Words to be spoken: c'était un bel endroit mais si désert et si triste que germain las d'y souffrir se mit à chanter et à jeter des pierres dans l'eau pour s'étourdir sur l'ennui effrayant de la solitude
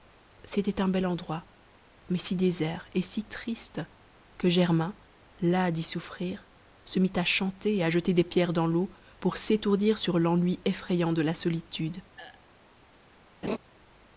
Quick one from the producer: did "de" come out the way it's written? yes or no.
yes